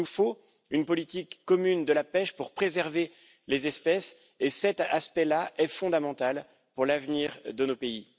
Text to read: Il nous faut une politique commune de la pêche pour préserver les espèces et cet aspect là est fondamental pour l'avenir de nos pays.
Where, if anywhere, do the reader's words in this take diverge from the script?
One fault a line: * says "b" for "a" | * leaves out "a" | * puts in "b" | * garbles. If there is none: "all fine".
all fine